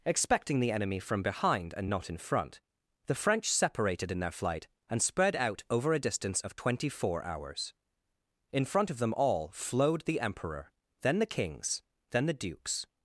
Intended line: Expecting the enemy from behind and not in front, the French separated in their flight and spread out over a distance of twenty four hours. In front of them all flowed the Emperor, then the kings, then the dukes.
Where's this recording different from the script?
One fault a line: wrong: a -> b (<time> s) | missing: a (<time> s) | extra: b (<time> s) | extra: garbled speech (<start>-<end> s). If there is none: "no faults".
no faults